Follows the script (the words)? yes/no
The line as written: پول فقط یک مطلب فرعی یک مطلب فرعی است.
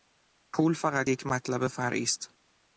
no